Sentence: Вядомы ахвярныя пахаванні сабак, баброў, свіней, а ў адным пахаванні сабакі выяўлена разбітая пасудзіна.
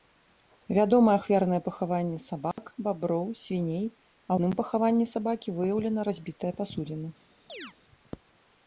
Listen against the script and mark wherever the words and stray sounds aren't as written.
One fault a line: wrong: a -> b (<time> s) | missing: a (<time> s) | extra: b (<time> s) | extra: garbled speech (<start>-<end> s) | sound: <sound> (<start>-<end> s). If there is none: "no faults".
sound: dropout (2.5-2.6 s)
missing: ў (4.3 s)
sound: chirp (7.5-7.7 s)